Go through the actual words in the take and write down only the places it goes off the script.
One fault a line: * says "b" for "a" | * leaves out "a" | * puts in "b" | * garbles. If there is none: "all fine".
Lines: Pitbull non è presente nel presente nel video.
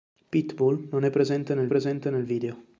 all fine